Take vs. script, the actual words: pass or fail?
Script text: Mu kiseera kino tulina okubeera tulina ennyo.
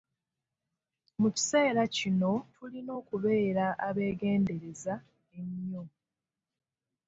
fail